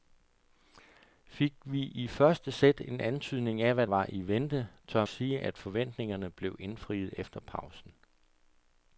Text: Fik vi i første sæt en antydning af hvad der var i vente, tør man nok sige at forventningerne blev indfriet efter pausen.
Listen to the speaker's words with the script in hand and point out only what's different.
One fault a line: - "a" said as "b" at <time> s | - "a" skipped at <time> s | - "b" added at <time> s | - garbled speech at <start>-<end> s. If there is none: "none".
- "der" skipped at 3.9 s
- "man nok" skipped at 5.1 s